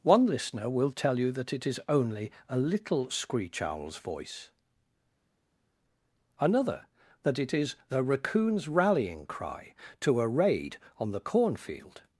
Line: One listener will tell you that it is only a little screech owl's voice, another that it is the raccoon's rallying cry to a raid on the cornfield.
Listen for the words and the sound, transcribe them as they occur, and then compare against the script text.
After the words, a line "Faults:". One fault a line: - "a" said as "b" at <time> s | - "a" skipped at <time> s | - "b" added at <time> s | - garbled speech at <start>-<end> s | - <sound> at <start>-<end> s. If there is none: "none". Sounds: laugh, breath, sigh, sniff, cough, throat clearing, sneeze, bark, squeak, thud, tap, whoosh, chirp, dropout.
One listener will tell you that it is only a little screech owl's voice, another that it is the raccoon's rallying cry to a raid on the cornfield.
Faults:
none